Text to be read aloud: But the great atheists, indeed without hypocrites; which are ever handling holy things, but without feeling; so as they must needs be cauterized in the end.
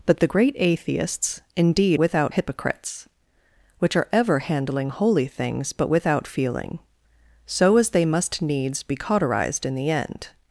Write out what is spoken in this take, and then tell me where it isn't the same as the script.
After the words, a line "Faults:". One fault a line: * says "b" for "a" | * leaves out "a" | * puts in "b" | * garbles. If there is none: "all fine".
But the great atheists, indeed without hypocrites; which are ever handling holy things, but without feeling; so as they must needs be cauterized in the end.
Faults:
all fine